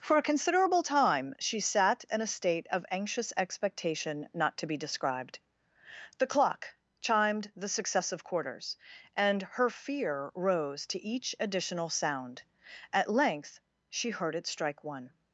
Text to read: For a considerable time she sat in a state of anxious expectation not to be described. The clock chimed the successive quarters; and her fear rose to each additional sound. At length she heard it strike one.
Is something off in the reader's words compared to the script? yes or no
no